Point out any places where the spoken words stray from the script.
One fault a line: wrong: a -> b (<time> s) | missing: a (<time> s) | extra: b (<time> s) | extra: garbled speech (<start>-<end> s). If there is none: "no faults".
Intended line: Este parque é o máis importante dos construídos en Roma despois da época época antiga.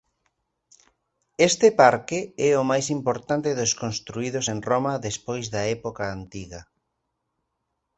missing: época (6.0 s)